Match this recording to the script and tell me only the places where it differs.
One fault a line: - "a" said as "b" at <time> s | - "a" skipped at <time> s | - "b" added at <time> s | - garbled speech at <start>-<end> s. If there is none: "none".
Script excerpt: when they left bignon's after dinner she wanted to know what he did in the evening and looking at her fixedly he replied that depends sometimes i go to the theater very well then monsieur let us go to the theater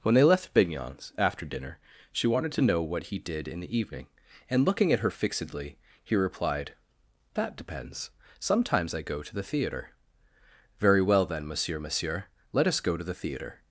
- "monsieur" added at 11.8 s